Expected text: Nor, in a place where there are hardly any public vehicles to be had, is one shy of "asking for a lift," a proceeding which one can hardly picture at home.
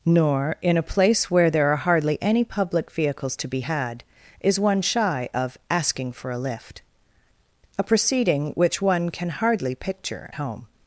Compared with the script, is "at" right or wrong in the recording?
wrong